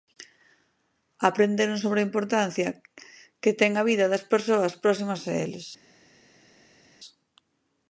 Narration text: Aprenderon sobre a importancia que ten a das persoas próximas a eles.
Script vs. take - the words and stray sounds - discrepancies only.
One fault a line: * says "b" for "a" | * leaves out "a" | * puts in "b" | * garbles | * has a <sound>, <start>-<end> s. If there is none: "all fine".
* puts in "vida"